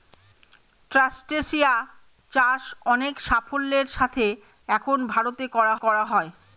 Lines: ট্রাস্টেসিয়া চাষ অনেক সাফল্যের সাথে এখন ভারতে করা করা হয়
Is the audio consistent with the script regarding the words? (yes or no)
yes